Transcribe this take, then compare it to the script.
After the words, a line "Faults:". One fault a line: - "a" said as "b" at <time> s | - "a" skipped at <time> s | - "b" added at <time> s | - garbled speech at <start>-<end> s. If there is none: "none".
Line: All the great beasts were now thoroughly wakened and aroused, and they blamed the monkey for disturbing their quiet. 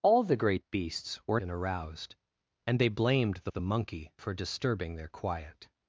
All the great beasts were and aroused, and they blamed the the monkey for disturbing their quiet.
Faults:
- "now thoroughly wakened" skipped at 1.4 s
- "the" added at 3.5 s